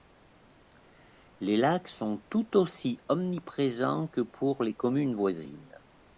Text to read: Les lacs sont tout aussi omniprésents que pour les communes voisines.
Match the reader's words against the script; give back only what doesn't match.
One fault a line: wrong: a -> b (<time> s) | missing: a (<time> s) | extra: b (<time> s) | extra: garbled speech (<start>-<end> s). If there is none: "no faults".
no faults